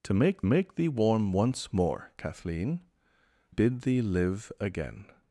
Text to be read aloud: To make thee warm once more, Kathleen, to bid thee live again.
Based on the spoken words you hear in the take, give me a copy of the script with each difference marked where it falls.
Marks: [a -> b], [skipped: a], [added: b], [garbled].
To make [added: make] thee warm once more, Kathleen, [skipped: to] bid thee live again.